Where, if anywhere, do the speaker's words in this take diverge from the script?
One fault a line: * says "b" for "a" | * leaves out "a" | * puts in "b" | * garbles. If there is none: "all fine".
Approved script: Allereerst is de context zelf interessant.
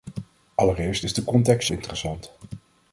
* leaves out "zelf"